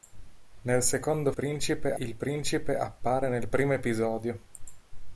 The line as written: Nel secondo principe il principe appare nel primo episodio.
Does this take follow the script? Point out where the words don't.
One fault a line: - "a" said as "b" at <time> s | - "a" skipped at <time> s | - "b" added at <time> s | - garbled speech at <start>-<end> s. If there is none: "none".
none